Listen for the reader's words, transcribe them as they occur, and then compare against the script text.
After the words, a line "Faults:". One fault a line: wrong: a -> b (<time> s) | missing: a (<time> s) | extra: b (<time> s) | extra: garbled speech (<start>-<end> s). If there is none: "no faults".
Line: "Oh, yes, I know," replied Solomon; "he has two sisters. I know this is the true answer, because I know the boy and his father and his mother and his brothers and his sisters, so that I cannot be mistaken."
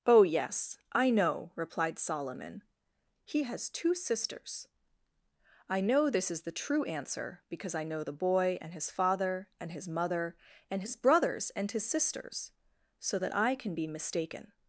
"Oh, yes, I know," replied Solomon; "he has two sisters. I know this is the true answer, because I know the boy and his father and his mother and his brothers and his sisters, so that I can be mistaken."
Faults:
wrong: cannot -> can (13.6 s)